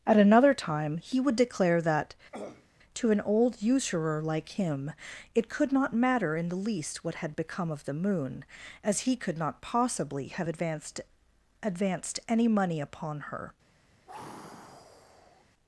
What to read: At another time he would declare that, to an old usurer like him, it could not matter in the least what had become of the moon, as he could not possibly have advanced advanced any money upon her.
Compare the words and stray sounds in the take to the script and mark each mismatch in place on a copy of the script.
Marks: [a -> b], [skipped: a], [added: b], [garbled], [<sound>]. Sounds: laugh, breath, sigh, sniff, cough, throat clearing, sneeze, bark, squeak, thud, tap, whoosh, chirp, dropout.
At another time he would declare that, [throat clearing] to an old usurer like him, it could not matter in the least what had become of the moon, as he could not possibly have advanced advanced any money upon her. [sigh]